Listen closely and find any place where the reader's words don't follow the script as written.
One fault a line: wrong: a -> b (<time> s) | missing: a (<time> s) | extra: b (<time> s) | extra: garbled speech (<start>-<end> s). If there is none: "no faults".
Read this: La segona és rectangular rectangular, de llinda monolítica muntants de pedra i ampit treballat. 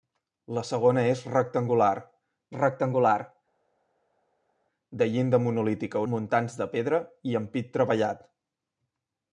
no faults